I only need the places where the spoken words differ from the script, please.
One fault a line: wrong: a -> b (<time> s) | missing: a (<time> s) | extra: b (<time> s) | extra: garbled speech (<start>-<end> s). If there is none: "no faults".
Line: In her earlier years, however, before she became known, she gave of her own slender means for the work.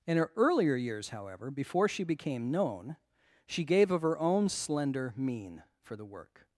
wrong: means -> mean (5.2 s)